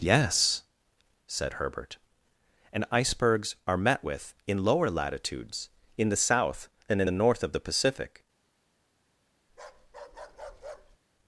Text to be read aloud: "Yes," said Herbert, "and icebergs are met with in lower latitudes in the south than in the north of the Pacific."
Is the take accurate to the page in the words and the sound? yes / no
no